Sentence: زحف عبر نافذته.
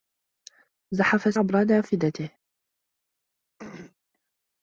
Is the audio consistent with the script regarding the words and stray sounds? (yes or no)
no